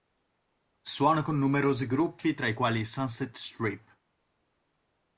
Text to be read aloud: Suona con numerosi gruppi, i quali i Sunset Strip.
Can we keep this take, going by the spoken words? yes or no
no